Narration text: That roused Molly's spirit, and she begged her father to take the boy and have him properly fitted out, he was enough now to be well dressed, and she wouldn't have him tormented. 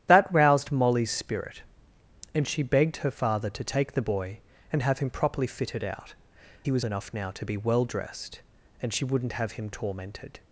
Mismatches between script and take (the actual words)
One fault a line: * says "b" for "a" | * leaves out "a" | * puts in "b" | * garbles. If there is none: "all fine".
all fine